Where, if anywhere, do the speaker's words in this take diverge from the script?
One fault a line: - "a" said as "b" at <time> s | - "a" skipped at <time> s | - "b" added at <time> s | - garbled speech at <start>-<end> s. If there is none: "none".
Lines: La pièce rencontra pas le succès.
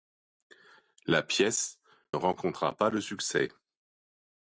none